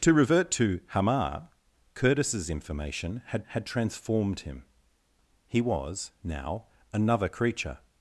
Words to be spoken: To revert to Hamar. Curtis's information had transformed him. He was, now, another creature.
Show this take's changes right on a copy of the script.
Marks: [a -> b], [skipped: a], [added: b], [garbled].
To revert to Hamar. Curtis's information had [added: had] transformed him. He was, now, another creature.